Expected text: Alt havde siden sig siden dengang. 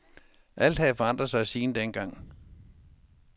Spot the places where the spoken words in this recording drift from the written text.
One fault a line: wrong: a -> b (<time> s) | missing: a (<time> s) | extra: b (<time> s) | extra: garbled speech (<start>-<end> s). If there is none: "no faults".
wrong: siden -> forandret (0.9 s)